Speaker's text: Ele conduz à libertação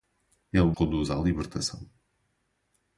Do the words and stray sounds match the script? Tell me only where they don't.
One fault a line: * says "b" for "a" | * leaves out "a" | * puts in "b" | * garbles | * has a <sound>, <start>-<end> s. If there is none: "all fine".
all fine